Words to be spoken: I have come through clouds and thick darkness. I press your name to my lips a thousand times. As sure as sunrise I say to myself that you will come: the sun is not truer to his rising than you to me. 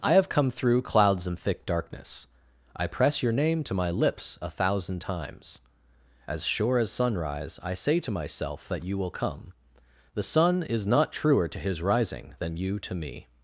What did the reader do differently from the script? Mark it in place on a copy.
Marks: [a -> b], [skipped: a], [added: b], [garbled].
I have come through clouds and thick darkness. I press your name to my lips a thousand times. As sure as sunrise I say to myself that you will come: the sun is not truer to his rising than you to me.